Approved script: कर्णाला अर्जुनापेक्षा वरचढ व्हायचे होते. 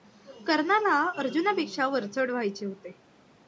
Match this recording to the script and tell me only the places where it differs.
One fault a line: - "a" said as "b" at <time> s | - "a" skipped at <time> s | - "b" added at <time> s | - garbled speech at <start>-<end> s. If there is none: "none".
none